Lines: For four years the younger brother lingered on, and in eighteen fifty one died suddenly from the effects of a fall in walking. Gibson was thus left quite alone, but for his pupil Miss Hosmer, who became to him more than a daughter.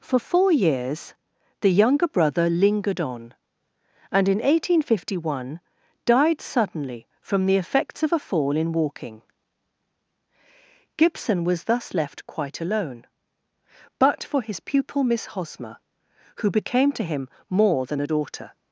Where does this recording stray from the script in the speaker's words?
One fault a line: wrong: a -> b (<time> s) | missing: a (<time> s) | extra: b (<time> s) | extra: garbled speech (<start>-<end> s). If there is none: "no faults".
no faults